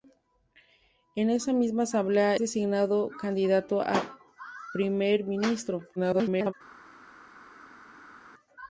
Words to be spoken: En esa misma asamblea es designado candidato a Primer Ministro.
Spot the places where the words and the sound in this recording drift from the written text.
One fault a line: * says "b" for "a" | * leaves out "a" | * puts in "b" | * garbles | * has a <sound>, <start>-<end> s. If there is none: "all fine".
* leaves out "es"
* garbles